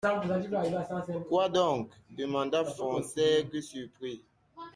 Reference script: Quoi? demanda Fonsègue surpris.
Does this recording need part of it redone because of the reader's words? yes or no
yes